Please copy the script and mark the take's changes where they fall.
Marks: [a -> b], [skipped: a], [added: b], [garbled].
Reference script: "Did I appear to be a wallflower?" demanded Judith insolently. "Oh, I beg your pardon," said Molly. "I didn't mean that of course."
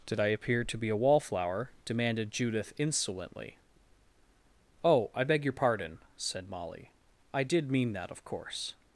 "Did I appear to be a wallflower?" demanded Judith insolently. "Oh, I beg your pardon," said Molly. "I [didn't -> did] mean that of course."